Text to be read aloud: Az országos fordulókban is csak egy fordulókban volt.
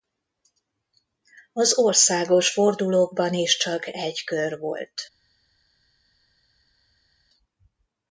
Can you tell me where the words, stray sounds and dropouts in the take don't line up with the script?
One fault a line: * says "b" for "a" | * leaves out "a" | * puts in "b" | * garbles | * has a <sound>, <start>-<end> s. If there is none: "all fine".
* says "kör" for "fordulókban"